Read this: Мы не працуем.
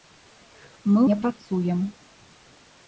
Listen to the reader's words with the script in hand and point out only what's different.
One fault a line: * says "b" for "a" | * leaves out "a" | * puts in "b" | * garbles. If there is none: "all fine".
all fine